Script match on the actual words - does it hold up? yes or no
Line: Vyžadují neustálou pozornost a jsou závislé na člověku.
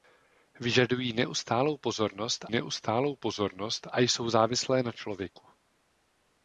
no